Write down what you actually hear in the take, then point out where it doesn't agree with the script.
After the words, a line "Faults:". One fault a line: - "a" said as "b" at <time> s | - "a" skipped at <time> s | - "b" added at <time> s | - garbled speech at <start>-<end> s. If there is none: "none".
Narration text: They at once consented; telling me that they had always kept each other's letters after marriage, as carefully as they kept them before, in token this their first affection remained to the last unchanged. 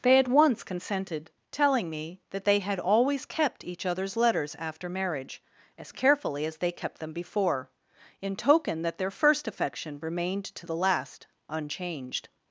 They at once consented; telling me that they had always kept each other's letters after marriage, as carefully as they kept them before, in token that their first affection remained to the last unchanged.
Faults:
- "this" said as "that" at 8.8 s